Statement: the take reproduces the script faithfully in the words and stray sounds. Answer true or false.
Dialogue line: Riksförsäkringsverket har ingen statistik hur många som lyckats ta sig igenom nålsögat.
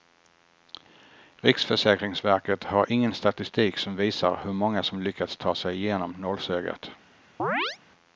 false